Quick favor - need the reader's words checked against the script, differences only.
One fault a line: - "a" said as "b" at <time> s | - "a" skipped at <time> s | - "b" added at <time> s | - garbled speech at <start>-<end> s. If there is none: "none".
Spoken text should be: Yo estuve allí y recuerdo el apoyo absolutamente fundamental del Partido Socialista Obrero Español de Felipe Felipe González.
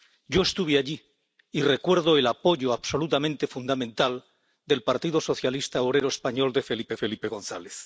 none